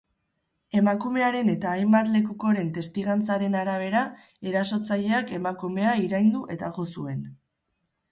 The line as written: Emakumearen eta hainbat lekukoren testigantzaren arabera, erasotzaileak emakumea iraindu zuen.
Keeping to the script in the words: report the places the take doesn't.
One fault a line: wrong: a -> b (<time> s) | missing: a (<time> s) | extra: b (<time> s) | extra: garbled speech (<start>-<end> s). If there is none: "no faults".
extra: eta jo (6.6 s)